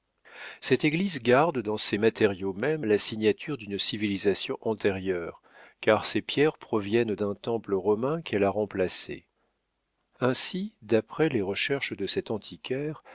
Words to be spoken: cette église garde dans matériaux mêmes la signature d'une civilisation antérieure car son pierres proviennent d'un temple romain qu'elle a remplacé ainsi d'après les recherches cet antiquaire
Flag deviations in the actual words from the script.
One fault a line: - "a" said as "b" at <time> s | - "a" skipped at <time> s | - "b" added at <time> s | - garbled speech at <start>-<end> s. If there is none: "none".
- "ses" added at 1.8 s
- "son" said as "ses" at 6.1 s
- "de" added at 12.0 s